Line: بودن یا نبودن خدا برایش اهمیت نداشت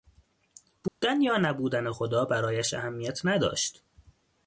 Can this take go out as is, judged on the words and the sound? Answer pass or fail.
fail